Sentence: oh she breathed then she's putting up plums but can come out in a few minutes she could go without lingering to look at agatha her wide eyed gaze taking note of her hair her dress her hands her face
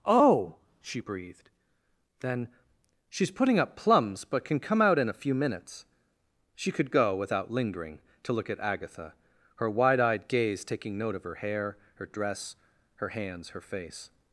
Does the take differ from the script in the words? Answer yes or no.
no